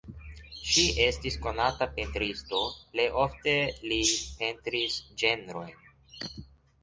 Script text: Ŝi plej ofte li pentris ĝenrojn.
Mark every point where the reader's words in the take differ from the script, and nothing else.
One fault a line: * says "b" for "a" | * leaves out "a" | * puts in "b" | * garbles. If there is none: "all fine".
* puts in "estis konata pentristo"